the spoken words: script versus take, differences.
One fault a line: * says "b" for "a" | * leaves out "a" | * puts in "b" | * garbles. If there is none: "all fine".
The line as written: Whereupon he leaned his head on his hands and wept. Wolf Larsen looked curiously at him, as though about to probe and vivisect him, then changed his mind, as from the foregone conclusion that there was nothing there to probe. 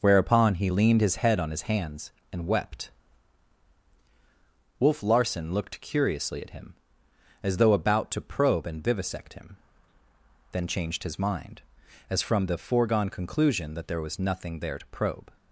all fine